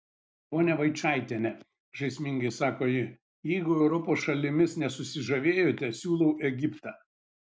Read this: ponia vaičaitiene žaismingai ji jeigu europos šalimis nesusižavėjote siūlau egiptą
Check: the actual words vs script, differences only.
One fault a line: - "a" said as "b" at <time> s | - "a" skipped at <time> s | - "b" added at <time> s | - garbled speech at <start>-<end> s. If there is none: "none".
- "sako" added at 2.5 s